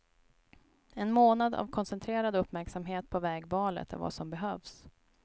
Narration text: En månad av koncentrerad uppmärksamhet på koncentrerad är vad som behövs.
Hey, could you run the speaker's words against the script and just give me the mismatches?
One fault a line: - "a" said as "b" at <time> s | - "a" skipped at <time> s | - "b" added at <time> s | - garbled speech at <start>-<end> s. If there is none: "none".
- "koncentrerad" said as "vägvalet" at 3.2 s